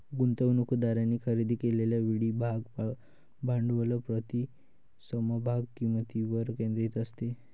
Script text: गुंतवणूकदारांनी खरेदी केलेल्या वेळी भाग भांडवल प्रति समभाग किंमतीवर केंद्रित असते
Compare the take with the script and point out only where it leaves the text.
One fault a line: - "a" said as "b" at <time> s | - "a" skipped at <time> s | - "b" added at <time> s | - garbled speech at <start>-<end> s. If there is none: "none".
none